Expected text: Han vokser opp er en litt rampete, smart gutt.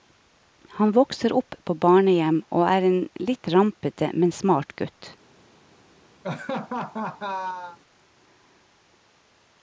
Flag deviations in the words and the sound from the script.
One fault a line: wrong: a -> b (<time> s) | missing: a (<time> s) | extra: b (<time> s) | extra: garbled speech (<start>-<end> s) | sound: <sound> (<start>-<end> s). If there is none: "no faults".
extra: på barnehjem og (1.6 s)
extra: men (4.1 s)
sound: laugh (6.2-7.8 s)